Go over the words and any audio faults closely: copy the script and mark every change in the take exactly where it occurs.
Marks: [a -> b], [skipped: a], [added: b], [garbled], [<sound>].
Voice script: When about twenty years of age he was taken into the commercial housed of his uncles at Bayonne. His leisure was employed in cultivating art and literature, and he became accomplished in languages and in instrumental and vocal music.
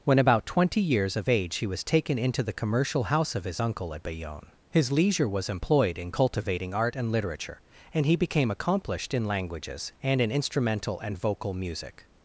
When about twenty years of age he was taken into the commercial [housed -> house] of his [uncles -> uncle] at Bayonne. His leisure was employed in cultivating art and literature, and he became accomplished in languages and in instrumental and vocal music.